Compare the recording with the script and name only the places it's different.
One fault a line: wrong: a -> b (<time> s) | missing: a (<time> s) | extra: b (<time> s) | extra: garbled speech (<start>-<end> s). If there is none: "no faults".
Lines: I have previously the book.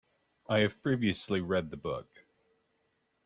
extra: read (1.4 s)